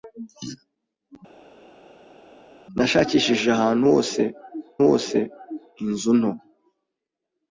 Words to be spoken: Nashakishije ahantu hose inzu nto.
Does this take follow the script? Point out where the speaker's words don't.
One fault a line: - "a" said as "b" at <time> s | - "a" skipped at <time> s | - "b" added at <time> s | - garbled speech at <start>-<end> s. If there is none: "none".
- "hose" added at 4.9 s